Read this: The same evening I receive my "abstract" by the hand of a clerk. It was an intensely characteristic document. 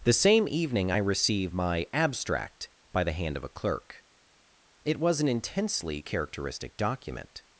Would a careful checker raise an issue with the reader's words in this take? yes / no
no